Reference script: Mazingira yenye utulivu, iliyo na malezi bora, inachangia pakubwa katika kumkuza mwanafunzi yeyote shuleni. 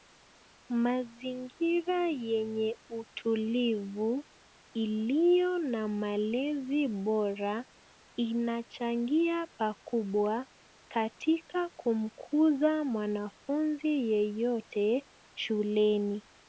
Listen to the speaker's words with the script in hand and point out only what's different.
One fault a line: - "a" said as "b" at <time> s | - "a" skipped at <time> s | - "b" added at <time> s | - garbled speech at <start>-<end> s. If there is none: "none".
none